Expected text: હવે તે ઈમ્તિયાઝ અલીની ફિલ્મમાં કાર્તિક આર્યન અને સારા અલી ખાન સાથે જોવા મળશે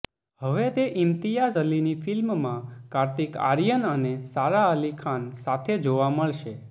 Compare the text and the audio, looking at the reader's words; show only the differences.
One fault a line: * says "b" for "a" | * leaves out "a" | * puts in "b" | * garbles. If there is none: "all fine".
all fine